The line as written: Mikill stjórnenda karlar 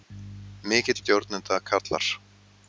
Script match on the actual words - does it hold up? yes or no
yes